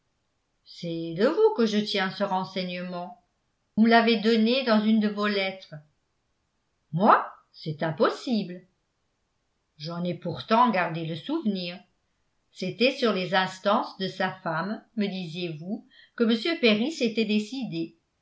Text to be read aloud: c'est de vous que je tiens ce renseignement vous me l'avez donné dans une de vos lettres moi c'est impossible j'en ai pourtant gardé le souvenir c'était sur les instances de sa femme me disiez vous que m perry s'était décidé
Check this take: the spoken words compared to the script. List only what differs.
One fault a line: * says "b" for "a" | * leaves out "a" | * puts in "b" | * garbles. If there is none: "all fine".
* leaves out "vous"